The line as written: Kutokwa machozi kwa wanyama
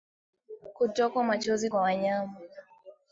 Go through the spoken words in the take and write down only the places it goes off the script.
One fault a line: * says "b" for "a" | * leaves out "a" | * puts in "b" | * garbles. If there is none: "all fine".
all fine